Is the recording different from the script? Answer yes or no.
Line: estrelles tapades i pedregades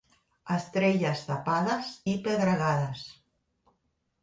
no